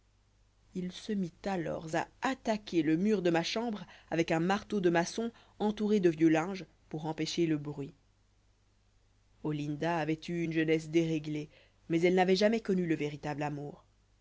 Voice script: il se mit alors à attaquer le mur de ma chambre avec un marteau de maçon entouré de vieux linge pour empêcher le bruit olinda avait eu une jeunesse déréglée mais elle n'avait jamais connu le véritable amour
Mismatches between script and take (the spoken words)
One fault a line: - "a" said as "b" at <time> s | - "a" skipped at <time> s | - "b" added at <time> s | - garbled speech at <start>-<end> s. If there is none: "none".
none